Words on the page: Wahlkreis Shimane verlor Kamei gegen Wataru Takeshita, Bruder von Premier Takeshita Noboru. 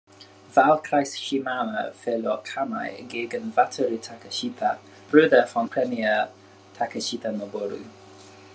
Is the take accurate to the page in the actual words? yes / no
yes